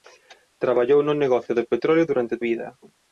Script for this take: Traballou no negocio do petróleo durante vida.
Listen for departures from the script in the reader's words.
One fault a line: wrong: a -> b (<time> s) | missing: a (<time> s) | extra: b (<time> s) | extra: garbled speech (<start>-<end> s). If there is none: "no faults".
no faults